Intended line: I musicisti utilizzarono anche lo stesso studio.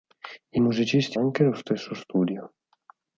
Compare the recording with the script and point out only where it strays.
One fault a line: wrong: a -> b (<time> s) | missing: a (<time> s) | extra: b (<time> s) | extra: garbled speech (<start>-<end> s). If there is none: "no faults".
missing: utilizzarono (1.2 s)